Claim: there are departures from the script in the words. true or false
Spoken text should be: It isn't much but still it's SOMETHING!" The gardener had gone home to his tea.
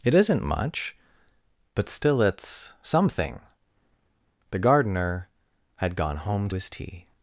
true